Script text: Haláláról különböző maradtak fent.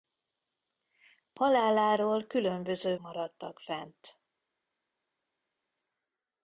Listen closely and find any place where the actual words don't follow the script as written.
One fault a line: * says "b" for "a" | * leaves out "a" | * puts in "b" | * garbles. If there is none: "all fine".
all fine